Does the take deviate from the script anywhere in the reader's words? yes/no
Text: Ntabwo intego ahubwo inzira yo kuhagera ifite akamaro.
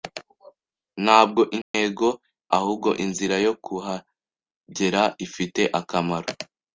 no